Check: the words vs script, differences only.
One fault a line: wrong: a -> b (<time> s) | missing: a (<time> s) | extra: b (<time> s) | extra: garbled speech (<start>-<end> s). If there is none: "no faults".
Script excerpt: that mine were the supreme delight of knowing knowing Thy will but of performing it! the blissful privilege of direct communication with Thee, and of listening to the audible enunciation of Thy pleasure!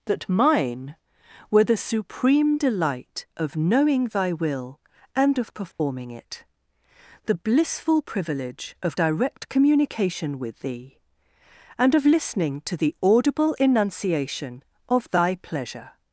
missing: knowing (4.1 s)
wrong: but -> and (5.2 s)